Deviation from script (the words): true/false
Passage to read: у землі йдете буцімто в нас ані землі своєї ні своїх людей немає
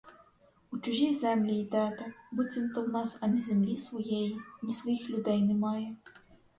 true